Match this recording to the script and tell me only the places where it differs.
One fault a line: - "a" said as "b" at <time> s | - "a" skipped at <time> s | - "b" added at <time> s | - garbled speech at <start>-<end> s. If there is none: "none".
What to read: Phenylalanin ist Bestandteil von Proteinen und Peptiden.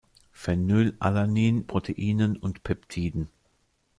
- "ist Bestandteil von" skipped at 1.7 s